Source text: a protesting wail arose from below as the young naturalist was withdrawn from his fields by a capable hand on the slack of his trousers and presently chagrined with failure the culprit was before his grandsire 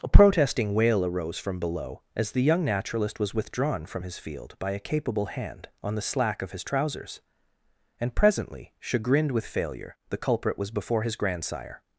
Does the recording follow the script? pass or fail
fail